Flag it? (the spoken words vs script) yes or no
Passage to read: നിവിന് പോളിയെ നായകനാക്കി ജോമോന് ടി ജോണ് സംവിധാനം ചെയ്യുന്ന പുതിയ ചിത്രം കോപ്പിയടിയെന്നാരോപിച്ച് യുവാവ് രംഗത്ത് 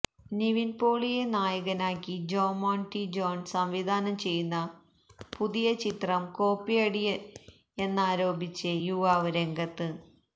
no